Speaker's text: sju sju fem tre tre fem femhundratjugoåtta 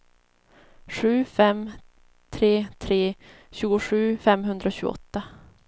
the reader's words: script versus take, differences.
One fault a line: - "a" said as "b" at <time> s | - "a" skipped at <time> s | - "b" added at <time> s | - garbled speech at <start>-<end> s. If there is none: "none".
- "sju" skipped at 1.1 s
- "fem" said as "tjugosju" at 3.5 s